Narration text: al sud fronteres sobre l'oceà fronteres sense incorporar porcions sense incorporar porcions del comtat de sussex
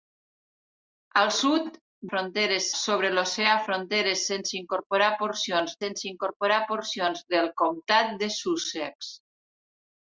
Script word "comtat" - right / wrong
right